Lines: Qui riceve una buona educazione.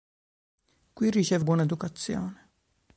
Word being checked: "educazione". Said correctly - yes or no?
yes